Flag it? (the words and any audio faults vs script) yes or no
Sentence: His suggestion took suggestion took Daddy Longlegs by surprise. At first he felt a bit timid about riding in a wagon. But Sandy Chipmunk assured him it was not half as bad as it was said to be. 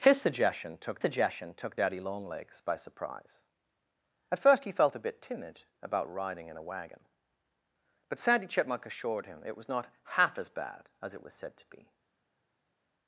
no